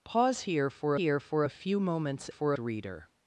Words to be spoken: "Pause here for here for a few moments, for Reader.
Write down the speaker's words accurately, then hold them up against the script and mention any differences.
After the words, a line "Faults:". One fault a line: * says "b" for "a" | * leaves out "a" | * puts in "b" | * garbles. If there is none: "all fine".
"Pause here for here for a few moments, for Reader.
Faults:
all fine